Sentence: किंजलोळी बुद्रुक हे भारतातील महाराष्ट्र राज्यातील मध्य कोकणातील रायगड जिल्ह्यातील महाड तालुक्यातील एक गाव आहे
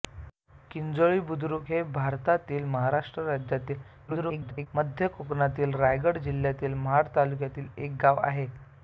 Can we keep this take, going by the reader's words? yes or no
no